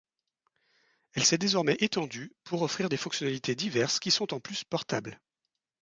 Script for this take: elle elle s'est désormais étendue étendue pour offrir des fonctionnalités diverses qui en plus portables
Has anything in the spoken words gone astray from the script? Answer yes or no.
yes